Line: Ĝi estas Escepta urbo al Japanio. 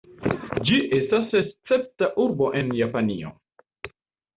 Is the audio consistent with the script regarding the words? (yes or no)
no